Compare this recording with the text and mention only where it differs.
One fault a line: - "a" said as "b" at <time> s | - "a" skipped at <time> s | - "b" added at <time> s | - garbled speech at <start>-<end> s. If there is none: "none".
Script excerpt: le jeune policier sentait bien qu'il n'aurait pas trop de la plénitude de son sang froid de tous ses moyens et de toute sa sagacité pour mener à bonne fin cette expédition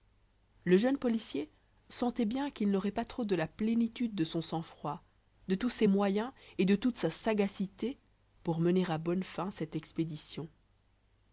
none